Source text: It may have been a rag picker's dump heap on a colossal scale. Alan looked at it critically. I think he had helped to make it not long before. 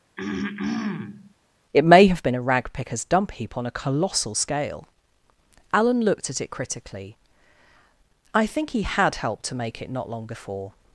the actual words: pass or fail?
pass